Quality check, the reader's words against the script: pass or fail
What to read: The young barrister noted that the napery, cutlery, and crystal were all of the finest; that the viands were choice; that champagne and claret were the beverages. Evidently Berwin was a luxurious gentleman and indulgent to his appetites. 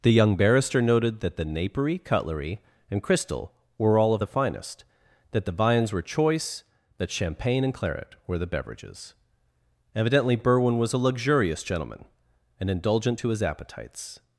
pass